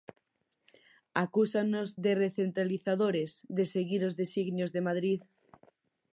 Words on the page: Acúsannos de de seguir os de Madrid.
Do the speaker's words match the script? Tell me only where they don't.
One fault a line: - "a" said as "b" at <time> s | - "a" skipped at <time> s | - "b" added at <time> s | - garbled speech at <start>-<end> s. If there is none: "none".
- "recentralizadores" added at 2.2 s
- "designios" added at 4.2 s